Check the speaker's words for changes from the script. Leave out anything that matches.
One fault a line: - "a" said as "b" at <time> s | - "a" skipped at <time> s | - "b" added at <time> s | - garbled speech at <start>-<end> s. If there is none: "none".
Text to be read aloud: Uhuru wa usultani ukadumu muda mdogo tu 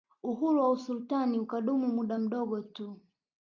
none